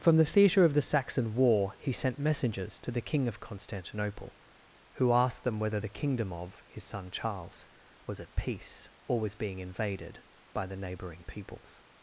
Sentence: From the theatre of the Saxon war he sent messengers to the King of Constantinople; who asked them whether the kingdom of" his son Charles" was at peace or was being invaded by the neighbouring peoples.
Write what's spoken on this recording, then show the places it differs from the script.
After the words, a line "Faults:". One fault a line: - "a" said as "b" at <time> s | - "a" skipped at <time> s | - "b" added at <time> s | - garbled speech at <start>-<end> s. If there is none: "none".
From the theatre of the Saxon war he sent messengers to the King of Constantinople; who asked them whether the kingdom of" his son Charles" was at peace or was being invaded by the neighbouring peoples.
Faults:
none